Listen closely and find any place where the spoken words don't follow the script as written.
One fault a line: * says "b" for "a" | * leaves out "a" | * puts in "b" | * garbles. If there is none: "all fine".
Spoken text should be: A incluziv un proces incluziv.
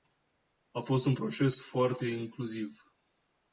* says "fost" for "incluziv"
* puts in "foarte"